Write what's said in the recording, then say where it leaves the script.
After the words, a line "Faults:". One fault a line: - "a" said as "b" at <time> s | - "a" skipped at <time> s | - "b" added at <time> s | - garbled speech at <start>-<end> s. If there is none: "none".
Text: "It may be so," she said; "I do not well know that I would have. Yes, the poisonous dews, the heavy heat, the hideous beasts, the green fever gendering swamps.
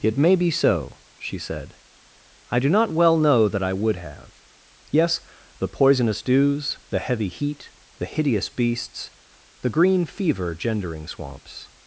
"It may be so," she said; "I do not well know that I would have. Yes, the poisonous dews, the heavy heat, the hideous beasts, the green fever gendering swamps.
Faults:
none